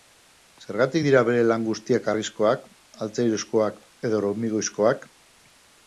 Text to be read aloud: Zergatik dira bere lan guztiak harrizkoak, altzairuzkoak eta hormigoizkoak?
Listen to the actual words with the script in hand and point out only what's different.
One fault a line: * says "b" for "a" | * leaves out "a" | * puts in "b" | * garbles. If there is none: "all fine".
* says "edo" for "eta"